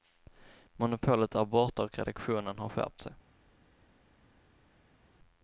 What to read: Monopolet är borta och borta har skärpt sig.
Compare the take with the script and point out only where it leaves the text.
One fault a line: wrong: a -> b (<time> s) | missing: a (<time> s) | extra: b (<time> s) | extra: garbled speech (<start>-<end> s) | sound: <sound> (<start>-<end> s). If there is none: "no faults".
wrong: borta -> redaktionen (2.0 s)